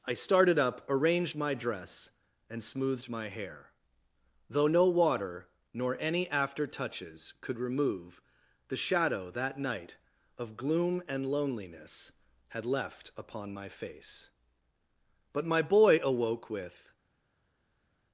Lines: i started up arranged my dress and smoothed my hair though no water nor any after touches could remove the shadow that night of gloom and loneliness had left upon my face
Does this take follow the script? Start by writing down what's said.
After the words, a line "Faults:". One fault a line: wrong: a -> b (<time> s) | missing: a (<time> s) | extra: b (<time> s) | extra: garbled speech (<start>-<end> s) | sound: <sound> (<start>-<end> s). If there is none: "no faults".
i started up arranged my dress and smoothed my hair though no water nor any after touches could remove the shadow that night of gloom and loneliness had left upon my face but my boy awoke with
Faults:
extra: but my boy awoke with (15.3 s)